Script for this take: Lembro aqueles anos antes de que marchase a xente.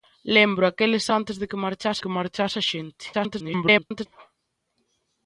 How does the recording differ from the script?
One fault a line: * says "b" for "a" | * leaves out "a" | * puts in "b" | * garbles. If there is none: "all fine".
* leaves out "anos"
* puts in "que marchase"
* garbles